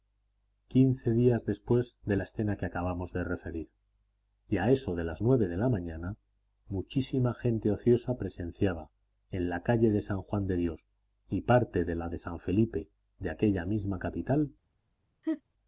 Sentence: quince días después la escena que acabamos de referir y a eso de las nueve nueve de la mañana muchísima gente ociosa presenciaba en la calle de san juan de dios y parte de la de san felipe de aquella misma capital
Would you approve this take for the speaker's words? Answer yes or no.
no